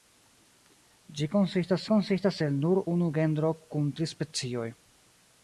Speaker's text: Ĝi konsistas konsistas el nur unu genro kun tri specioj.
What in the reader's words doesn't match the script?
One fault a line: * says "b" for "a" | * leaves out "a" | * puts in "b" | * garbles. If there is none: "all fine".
all fine